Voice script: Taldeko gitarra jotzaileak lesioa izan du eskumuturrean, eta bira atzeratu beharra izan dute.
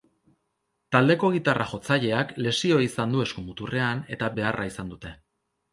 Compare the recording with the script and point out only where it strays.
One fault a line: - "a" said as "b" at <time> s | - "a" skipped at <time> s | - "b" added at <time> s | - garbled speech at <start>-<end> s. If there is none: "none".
- "bira atzeratu" skipped at 4.3 s